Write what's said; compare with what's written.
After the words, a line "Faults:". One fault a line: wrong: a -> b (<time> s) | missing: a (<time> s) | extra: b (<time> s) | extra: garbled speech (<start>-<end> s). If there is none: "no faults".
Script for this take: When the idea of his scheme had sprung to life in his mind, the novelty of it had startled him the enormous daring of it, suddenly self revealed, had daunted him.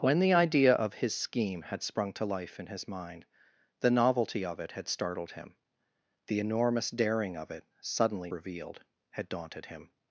When the idea of his scheme had sprung to life in his mind, the novelty of it had startled him the enormous daring of it, suddenly revealed, had daunted him.
Faults:
missing: self (8.3 s)